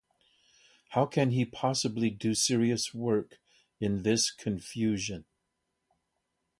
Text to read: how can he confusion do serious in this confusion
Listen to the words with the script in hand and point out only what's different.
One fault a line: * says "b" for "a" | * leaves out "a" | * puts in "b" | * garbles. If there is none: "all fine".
* says "possibly" for "confusion"
* puts in "work"